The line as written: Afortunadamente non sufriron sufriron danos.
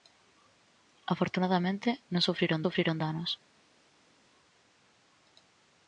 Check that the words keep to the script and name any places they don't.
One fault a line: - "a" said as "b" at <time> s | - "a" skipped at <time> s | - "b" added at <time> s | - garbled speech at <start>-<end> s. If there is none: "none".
none